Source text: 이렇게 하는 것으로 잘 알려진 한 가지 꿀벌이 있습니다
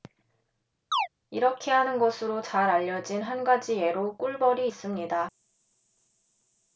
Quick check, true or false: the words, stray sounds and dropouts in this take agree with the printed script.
false